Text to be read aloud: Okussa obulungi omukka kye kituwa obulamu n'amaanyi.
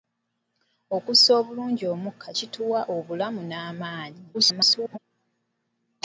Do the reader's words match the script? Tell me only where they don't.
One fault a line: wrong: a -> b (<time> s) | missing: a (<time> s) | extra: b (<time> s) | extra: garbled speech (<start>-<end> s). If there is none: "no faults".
missing: kye (2.3 s)
extra: garbled speech (4.3-5.0 s)